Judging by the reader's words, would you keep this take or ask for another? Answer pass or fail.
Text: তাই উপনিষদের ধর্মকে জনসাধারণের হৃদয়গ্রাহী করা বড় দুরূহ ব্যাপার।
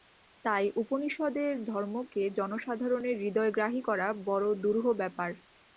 pass